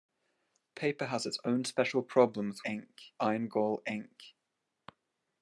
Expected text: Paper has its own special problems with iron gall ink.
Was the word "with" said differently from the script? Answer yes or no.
yes